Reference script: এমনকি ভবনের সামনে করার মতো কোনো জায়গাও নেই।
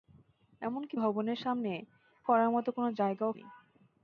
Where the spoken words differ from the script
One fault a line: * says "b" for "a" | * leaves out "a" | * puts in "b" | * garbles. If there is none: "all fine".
all fine